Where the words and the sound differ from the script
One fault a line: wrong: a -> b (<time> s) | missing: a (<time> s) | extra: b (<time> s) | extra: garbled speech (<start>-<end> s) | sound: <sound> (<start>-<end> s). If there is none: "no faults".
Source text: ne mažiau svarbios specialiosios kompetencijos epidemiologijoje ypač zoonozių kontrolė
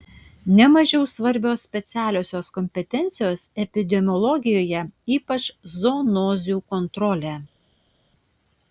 no faults